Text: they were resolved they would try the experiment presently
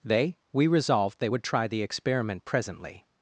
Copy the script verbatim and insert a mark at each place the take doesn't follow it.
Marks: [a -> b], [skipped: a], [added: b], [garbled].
they [were -> we] resolved they would try the experiment presently